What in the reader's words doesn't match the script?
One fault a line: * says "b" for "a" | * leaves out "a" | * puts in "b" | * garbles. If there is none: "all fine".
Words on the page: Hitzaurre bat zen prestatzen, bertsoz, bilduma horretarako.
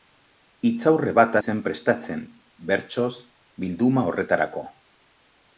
all fine